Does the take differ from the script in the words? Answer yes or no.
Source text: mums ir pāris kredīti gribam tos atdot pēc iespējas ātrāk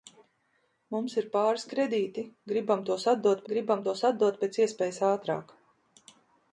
yes